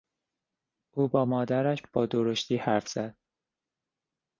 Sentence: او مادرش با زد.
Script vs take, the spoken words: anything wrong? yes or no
yes